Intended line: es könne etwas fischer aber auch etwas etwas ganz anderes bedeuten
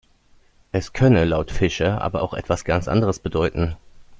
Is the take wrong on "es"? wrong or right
right